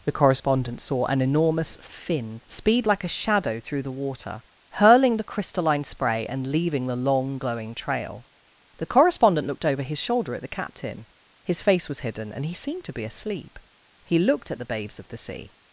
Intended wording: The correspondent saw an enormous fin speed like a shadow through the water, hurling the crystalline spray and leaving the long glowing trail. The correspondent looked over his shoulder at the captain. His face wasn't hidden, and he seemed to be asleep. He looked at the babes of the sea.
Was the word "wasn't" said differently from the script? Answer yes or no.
yes